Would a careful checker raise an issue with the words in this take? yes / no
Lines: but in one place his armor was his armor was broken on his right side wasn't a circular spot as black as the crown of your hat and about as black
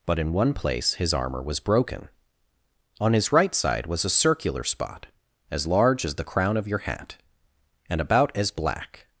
yes